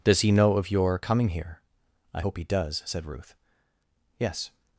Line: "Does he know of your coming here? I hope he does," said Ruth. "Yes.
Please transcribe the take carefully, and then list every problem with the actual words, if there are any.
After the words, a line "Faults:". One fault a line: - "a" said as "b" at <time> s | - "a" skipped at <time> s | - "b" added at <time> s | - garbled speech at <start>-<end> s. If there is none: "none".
"Does he know of your coming here? I hope he does," said Ruth. "Yes.
Faults:
none